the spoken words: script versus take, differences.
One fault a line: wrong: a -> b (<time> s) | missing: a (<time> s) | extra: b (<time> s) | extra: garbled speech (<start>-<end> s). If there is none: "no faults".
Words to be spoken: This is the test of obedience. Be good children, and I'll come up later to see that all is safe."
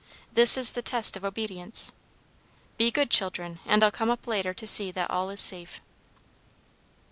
no faults